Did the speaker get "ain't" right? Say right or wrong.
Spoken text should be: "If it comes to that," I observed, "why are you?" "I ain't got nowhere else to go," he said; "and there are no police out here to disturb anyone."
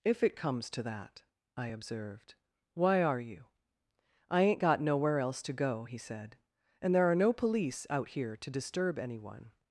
right